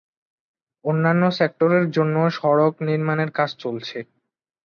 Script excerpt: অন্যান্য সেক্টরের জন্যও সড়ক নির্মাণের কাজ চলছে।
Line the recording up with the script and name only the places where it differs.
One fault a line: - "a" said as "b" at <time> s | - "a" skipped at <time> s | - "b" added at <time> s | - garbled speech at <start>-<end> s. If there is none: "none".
none